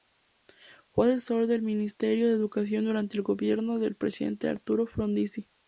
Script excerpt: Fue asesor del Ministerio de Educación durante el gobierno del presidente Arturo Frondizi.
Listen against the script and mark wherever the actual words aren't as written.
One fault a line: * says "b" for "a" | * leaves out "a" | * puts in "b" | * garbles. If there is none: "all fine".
all fine